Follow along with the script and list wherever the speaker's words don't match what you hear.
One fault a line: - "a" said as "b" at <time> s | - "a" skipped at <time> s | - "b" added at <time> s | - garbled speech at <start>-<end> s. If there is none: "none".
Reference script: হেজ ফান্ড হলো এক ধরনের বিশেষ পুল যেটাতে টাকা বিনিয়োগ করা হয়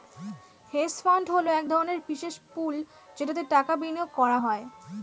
none